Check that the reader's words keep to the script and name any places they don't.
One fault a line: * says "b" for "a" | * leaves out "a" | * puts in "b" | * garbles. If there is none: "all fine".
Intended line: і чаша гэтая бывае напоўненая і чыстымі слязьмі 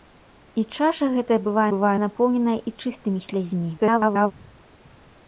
* puts in "бывае"
* garbles